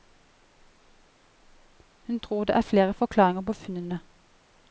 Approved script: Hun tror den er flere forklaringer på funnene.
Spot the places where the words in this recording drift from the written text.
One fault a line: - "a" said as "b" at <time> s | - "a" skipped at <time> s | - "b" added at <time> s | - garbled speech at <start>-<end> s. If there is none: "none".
- "den" said as "det" at 2.4 s